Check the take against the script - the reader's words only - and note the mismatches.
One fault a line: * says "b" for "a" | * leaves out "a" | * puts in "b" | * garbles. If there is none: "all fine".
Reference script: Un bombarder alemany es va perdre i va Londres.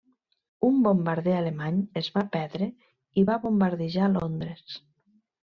* puts in "bombardejar"